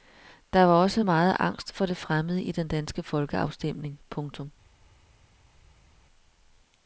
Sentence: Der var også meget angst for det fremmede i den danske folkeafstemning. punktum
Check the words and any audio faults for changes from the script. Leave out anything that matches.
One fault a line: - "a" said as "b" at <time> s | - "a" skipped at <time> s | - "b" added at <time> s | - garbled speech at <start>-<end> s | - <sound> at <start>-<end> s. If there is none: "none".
none